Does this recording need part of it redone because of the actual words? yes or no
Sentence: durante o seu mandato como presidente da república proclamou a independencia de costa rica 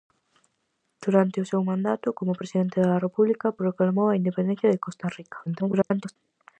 yes